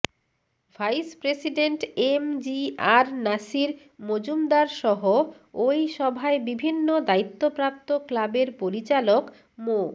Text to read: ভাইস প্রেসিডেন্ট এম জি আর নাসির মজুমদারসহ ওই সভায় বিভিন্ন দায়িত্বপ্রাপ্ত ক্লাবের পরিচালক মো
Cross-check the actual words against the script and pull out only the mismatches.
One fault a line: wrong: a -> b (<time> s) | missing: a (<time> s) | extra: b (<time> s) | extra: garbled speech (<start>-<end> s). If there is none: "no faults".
no faults